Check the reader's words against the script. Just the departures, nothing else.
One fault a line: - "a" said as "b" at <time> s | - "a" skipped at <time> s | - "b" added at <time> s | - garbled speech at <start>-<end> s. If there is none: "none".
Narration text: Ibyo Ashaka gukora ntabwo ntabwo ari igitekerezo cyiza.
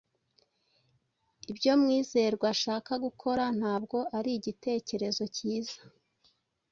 - "Mwizerwa" added at 1.8 s
- "ntabwo" skipped at 4.0 s